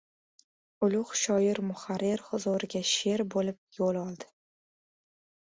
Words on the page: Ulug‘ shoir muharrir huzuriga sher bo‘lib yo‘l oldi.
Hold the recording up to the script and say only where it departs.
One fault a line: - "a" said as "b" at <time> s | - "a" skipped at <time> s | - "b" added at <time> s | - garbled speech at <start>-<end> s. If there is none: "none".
none